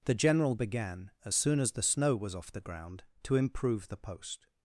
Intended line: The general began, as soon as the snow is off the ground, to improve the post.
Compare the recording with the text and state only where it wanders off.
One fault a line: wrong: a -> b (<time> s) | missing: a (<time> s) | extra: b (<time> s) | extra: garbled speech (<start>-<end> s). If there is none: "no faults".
wrong: is -> was (2.2 s)